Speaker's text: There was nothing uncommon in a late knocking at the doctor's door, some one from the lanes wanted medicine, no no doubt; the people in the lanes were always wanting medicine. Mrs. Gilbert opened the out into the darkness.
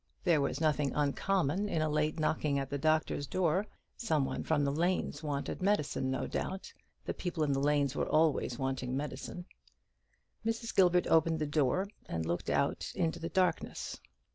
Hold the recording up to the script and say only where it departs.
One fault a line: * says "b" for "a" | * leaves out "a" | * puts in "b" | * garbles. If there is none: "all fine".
* leaves out "no"
* puts in "door and looked"